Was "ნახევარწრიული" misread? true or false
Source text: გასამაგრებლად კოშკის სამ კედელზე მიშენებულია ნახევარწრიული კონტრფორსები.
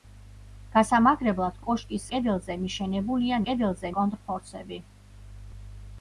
true